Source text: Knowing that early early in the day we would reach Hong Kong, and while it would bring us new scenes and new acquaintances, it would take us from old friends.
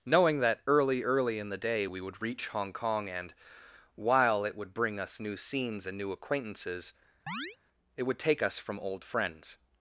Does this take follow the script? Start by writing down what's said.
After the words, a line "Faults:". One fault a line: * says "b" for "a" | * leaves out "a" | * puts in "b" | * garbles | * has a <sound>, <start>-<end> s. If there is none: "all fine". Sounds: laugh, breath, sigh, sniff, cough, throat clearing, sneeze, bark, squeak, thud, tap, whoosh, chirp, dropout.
Knowing that early early in the day we would reach Hong Kong, and while it would bring us new scenes and new acquaintances, it would take us from old friends.
Faults:
* has a chirp, 7.3-7.6 s